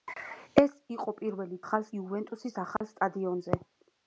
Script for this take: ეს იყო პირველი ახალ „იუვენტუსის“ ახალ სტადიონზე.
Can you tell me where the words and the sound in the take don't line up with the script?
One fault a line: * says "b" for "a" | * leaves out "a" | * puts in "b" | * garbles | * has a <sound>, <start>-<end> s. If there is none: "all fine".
* has a dropout, 2.8-2.8 s